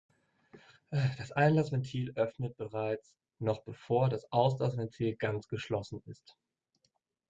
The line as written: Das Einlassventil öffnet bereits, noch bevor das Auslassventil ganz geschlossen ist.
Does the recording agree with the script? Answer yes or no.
yes